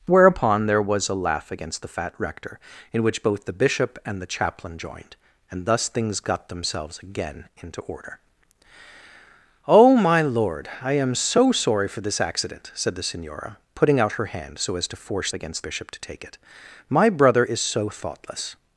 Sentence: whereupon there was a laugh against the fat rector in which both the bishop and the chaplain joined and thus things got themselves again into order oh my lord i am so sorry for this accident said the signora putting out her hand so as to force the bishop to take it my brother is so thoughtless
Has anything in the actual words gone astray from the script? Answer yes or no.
yes